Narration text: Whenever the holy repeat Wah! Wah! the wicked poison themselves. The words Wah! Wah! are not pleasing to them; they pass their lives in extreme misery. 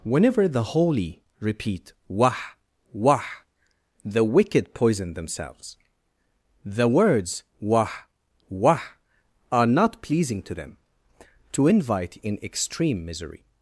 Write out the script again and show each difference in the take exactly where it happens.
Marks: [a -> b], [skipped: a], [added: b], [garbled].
Whenever the holy repeat Wah! Wah! the wicked poison themselves. The words Wah! Wah! are not pleasing to them; [they pass their lives -> to invite] in extreme misery.